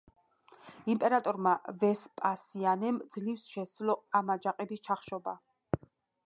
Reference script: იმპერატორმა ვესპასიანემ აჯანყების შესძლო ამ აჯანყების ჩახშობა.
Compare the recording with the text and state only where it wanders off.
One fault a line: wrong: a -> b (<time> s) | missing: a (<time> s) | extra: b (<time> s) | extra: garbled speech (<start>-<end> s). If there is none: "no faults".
wrong: აჯანყების -> ძლივს (3.1 s)